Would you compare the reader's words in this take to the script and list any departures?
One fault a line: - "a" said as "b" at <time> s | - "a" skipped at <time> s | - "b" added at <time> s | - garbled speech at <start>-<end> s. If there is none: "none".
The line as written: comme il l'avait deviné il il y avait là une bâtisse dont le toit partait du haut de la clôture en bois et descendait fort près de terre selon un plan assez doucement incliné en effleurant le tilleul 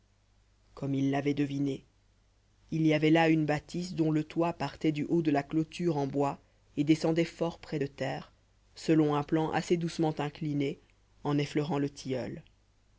- "il" skipped at 2.9 s